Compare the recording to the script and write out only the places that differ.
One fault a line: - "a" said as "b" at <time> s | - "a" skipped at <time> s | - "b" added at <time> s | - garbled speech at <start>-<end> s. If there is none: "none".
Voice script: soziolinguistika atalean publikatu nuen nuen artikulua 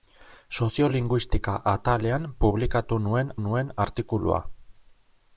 none